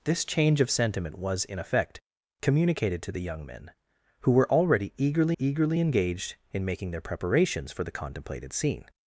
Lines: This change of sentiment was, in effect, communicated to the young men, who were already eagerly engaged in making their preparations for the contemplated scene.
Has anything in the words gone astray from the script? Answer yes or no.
yes